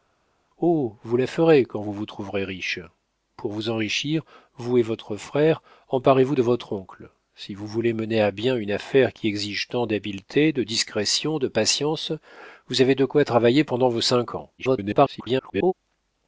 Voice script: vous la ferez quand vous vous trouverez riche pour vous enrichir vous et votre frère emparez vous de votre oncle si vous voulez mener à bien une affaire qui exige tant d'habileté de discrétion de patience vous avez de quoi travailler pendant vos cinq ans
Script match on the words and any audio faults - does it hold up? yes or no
no